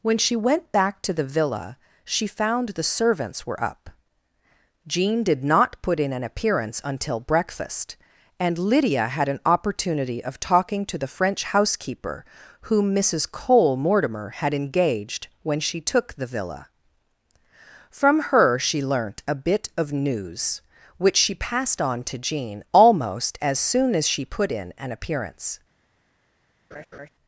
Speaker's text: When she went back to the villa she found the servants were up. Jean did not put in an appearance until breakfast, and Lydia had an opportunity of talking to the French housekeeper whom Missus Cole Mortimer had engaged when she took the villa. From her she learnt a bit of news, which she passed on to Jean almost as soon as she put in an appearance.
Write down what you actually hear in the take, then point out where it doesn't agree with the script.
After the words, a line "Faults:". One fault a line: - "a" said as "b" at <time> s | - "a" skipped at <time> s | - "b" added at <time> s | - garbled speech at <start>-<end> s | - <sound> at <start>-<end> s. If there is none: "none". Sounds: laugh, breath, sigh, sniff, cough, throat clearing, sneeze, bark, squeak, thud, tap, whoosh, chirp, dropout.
When she went back to the villa she found the servants were up. Jean did not put in an appearance until breakfast, and Lydia had an opportunity of talking to the French housekeeper whom Missus Cole Mortimer had engaged when she took the villa. From her she learnt a bit of news, which she passed on to Jean almost as soon as she put in an appearance.
Faults:
- laugh at 26.7-27.1 s